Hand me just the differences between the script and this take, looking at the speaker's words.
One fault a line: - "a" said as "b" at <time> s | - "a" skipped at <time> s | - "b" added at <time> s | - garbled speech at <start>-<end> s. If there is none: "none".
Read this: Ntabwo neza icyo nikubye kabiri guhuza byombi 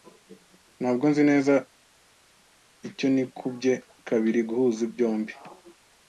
- "nzi" added at 1.1 s